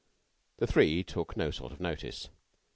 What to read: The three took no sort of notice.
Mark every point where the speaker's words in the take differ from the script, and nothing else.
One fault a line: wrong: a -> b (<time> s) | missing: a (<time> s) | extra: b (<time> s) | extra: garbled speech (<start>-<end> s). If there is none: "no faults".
no faults